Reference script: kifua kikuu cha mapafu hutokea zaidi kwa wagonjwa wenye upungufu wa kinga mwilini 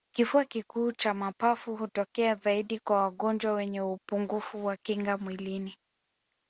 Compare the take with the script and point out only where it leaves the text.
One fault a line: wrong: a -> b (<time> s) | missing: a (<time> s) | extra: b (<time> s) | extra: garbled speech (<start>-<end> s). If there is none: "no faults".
no faults